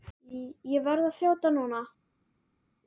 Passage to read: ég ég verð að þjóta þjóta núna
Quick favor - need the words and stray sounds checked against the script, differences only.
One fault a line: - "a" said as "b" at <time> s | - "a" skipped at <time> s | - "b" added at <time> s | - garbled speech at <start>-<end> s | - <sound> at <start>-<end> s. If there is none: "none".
- "ég" skipped at 0.9 s
- "þjóta" skipped at 1.6 s